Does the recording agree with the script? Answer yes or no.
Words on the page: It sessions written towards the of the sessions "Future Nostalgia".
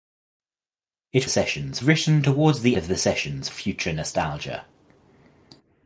yes